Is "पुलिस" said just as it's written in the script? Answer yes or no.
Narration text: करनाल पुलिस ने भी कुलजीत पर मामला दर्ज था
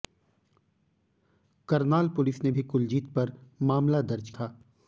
yes